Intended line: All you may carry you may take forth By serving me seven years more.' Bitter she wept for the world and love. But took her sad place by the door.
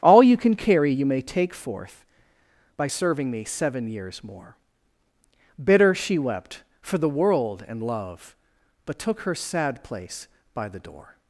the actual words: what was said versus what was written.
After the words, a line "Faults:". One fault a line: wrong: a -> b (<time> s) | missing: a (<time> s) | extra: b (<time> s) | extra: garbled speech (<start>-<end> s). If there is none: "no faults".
All you can carry you may take forth By serving me seven years more.' Bitter she wept for the world and love. But took her sad place by the door.
Faults:
wrong: may -> can (0.3 s)